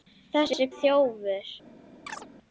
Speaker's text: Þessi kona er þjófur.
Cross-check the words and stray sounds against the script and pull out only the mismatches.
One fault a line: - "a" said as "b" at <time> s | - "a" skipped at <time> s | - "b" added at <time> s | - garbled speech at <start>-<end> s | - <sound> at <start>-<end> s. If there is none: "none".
- "kona" skipped at 0.7 s
- chirp at 2.1-2.3 s